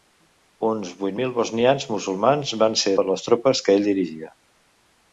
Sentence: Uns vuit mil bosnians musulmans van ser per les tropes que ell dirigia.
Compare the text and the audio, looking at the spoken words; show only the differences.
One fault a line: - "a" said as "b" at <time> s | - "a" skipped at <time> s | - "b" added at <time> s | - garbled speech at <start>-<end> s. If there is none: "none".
none